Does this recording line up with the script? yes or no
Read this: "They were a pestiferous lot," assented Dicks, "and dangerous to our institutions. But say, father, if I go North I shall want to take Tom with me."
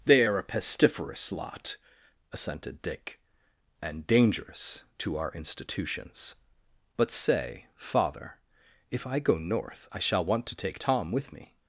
no